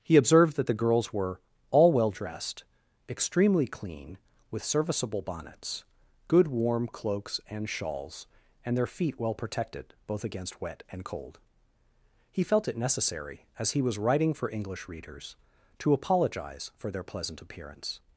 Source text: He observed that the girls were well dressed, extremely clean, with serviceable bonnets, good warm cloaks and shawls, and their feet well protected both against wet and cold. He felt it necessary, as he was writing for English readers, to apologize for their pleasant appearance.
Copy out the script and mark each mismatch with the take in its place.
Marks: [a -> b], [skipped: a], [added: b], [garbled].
He observed that the girls were [added: all] well dressed, extremely clean, with serviceable bonnets, good warm cloaks and shawls, and their feet well protected both against wet and cold. He felt it necessary, as he was writing for English readers, to apologize for their pleasant appearance.